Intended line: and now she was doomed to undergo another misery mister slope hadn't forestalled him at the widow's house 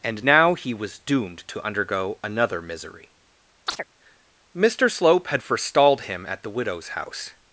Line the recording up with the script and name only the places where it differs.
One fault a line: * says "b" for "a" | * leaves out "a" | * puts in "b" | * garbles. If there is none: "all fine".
* says "he" for "she"
* says "had" for "hadn't"